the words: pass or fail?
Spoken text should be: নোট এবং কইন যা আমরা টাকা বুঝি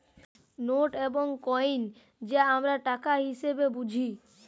fail